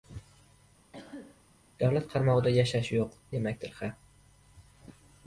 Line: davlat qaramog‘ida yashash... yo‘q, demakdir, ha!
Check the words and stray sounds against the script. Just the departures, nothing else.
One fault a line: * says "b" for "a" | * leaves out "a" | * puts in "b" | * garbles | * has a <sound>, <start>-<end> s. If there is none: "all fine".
* has a cough, 0.9-1.4 s